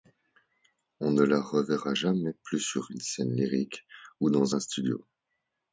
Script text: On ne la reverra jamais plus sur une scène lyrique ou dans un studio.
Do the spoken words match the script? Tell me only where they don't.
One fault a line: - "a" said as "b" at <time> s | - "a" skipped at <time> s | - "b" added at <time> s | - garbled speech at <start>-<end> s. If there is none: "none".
none